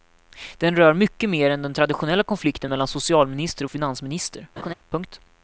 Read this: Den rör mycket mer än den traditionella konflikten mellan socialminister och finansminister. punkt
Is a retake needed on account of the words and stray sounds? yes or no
yes